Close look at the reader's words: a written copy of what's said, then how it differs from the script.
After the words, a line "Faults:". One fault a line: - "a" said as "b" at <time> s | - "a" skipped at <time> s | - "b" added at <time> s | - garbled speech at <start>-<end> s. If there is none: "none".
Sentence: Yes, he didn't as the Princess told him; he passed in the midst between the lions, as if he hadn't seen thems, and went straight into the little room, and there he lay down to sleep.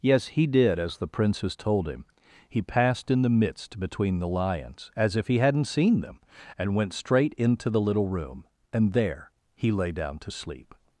Yes, he did as the Princess told him; he passed in the midst between the lions, as if he hadn't seen them, and went straight into the little room, and there he lay down to sleep.
Faults:
- "didn't" said as "did" at 0.5 s
- "thems" said as "them" at 6.0 s